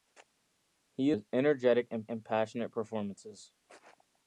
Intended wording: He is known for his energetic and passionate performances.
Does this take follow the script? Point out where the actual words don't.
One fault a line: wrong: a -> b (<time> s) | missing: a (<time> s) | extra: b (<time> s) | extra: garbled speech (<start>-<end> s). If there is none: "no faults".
missing: is known for (1.1 s)
extra: and (2.1 s)